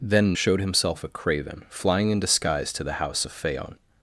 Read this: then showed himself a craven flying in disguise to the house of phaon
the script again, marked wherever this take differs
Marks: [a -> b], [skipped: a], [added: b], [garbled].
then showed himself a craven flying in disguise to the house of phaon